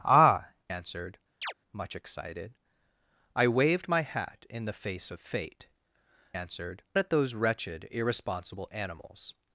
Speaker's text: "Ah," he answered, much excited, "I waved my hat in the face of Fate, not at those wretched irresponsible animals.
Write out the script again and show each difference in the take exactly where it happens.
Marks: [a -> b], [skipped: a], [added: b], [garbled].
"Ah," [skipped: he] answered, much excited, "I waved my hat in the face of Fate, [not -> answered] at those wretched irresponsible animals.